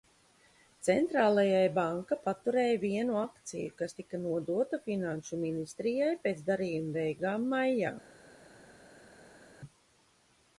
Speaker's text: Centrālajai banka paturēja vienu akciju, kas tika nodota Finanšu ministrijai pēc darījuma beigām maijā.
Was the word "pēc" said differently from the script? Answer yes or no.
no